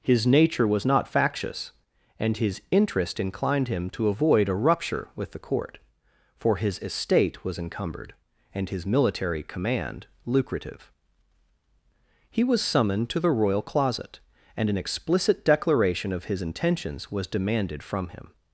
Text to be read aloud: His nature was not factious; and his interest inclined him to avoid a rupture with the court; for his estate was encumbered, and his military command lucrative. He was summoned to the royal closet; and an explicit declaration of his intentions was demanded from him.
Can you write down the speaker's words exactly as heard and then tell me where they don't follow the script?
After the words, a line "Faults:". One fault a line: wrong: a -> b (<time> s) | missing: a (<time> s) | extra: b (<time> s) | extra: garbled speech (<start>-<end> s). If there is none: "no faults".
His nature was not factious; and his interest inclined him to avoid a rupture with the court; for his estate was encumbered, and his military command lucrative. He was summoned to the royal closet; and an explicit declaration of his intentions was demanded from him.
Faults:
no faults